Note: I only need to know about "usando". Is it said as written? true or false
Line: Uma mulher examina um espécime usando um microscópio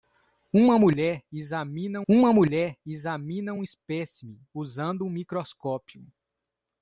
true